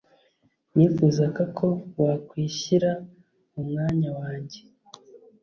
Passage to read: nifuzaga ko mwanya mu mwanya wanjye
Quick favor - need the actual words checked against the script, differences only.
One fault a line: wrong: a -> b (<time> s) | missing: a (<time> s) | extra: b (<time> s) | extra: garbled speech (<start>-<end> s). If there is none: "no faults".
wrong: mwanya -> wakwishyira (2.0 s)